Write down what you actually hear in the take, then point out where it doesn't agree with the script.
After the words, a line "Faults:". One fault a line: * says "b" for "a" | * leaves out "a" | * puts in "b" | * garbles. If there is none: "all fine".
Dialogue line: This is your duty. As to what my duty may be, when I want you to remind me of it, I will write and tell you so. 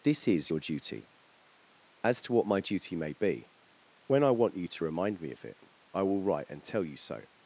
This is your duty. As to what my duty may be, when I want you to remind me of it, I will write and tell you so.
Faults:
all fine